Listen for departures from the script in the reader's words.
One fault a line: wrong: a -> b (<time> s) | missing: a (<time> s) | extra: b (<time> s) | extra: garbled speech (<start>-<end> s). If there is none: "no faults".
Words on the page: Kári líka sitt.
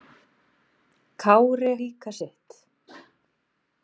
no faults